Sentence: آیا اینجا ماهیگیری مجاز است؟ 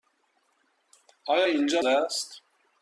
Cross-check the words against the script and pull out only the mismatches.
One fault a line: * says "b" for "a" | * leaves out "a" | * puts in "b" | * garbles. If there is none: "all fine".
* leaves out "ماهیگیری مجاز"